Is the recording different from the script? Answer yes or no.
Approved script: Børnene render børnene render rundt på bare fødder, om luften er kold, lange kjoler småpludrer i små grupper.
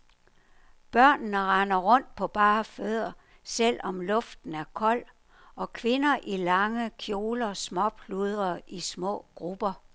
yes